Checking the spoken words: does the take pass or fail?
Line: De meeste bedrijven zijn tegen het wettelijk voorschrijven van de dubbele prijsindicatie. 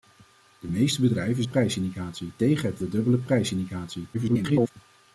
fail